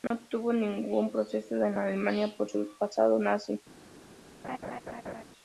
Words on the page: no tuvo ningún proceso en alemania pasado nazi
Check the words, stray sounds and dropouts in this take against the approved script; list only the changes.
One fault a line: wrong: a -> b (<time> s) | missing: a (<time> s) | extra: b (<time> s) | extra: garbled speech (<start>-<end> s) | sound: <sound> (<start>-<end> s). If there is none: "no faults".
sound: dropout (0.1-0.1 s)
extra: por su (2.4 s)
sound: laugh (4.4-5.2 s)